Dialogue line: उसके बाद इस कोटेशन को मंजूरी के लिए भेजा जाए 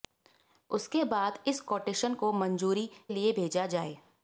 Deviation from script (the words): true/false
true